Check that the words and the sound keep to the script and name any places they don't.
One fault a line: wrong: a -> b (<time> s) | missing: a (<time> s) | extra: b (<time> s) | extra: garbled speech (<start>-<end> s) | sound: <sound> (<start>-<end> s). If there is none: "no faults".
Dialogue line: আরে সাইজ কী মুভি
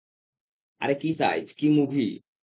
extra: কী (0.9 s)